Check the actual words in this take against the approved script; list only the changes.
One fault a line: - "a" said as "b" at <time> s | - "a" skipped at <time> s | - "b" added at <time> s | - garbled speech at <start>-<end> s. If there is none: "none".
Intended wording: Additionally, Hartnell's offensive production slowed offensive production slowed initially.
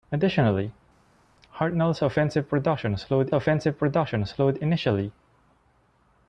none